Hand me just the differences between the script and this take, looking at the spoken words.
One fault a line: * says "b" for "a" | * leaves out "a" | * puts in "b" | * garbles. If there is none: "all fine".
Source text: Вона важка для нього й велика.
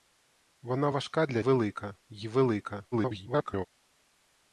* says "велика" for "нього"
* garbles